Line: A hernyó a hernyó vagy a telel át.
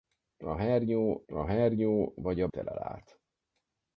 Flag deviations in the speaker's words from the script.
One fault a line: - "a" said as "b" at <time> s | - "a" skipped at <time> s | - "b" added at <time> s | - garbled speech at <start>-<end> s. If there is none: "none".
none